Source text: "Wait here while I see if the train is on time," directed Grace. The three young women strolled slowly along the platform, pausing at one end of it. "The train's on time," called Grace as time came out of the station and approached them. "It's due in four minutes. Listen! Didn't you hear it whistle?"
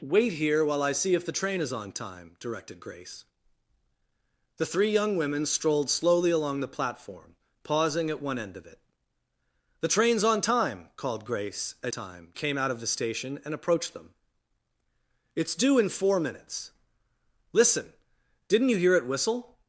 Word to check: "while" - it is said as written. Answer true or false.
true